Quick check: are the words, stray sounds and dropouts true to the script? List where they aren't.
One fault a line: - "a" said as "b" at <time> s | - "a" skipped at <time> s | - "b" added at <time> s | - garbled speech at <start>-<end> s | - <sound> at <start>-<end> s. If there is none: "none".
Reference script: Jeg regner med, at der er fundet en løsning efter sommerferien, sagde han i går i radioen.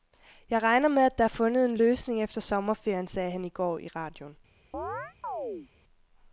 - chirp at 4.7-5.7 s